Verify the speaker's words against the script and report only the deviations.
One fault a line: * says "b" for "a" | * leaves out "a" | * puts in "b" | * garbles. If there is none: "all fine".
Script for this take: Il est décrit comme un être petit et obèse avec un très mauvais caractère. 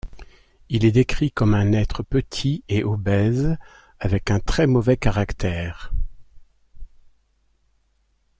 all fine